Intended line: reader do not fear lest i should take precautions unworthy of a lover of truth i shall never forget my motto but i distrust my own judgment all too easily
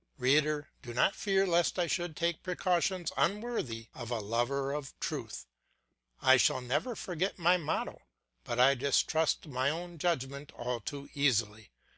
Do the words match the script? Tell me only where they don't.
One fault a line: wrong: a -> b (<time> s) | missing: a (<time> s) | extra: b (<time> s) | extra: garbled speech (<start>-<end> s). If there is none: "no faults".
no faults